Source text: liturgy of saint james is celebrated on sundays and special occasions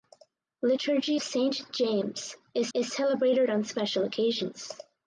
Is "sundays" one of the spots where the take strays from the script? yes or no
yes